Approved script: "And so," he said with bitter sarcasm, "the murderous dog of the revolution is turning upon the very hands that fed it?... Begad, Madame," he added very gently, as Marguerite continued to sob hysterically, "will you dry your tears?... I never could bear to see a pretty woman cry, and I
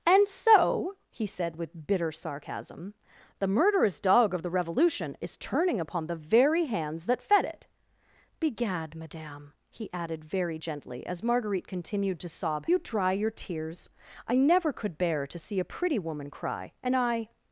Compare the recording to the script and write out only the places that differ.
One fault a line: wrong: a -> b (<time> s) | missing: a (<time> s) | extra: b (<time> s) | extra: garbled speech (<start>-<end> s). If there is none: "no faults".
missing: hysterically will (12.7 s)